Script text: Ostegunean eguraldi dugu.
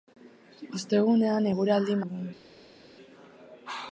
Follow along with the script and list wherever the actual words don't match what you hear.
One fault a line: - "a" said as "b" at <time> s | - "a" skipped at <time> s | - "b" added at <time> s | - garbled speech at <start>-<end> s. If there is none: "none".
none